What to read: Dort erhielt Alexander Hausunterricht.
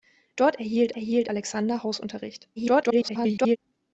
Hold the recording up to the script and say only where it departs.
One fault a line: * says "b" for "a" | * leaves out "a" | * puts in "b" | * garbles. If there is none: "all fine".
* puts in "erhielt"
* garbles